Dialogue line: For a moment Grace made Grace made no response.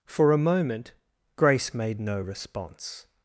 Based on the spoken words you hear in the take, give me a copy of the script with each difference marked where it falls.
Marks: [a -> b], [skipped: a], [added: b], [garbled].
For a moment Grace made [skipped: Grace made] no response.